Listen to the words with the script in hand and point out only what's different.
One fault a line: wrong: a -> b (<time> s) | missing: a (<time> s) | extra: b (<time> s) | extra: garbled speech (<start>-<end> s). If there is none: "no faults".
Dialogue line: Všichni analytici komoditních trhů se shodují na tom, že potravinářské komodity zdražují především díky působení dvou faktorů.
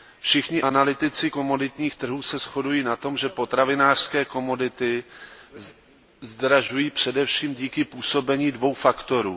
no faults